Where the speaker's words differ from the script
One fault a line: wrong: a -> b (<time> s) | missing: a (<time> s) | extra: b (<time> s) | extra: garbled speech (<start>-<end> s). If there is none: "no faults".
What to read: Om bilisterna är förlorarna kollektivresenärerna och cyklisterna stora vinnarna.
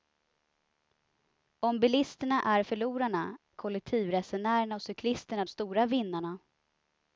no faults